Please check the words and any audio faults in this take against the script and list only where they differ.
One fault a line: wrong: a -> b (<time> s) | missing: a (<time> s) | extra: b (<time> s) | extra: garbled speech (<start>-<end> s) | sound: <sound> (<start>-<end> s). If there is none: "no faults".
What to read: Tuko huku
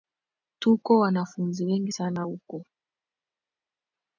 extra: wanafunzi wengi sana (1.0 s)